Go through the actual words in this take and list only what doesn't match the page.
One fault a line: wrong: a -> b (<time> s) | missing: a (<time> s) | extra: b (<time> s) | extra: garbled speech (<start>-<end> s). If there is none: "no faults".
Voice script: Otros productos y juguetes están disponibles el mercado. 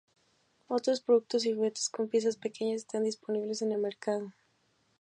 extra: con piezas pequeñas (1.9 s)
extra: en (3.6 s)